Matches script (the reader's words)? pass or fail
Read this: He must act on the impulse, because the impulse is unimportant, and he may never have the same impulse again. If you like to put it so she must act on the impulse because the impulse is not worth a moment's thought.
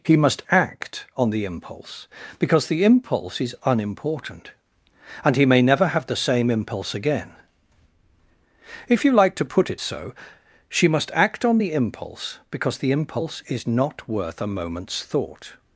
pass